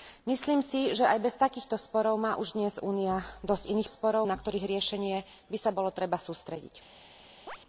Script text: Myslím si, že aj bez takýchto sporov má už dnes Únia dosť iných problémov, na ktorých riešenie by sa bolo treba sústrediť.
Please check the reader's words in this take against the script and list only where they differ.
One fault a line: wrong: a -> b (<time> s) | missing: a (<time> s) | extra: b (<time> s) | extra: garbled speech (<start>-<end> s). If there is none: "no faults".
wrong: problémov -> sporov (3.8 s)